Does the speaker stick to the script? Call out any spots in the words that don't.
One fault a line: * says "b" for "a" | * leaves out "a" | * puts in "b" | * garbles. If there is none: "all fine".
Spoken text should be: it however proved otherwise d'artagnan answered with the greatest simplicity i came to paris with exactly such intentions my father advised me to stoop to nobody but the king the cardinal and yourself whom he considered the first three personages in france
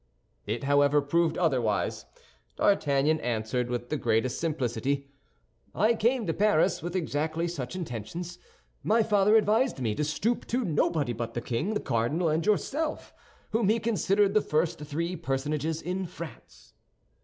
all fine